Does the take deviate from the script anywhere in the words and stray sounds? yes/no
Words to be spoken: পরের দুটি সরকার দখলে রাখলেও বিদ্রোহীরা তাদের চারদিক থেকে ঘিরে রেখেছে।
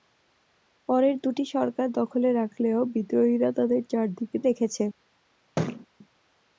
yes